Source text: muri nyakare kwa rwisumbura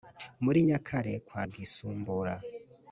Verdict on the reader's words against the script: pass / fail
pass